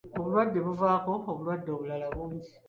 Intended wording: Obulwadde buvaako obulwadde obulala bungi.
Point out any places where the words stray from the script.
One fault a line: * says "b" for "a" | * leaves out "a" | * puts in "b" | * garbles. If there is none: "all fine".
all fine